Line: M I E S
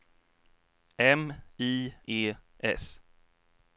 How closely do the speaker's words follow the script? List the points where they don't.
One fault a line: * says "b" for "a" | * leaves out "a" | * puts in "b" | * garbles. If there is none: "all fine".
all fine